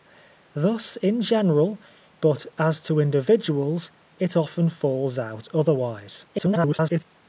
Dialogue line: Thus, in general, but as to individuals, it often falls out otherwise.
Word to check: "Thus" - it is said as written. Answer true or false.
true